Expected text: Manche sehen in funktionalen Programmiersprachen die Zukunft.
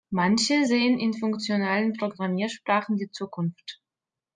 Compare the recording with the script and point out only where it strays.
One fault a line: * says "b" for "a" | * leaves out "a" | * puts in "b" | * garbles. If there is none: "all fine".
all fine